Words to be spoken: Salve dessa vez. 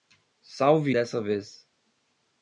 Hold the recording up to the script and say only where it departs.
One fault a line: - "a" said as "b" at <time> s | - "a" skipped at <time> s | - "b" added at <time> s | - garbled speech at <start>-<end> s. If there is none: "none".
none